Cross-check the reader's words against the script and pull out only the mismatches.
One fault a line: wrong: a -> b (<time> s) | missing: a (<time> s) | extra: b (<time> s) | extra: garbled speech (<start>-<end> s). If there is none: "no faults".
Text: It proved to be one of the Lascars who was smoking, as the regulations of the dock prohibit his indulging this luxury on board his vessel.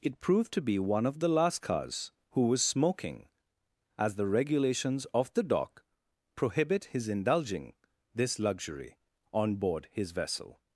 no faults